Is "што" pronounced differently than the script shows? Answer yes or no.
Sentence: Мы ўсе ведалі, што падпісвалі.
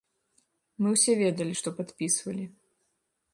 no